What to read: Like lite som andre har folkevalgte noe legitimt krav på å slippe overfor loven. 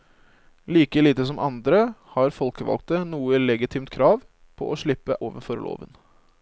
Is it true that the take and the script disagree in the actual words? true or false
false